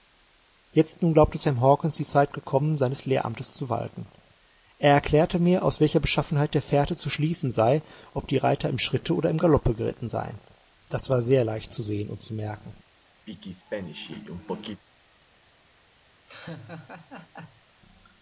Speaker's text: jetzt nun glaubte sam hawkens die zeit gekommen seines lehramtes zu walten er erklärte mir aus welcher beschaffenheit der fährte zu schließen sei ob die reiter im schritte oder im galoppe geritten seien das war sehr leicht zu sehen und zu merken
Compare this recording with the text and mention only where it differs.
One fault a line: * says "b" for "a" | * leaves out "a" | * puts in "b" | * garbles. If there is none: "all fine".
all fine